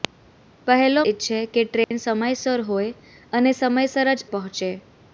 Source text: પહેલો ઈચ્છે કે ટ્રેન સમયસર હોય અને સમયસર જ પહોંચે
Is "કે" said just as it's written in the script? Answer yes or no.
yes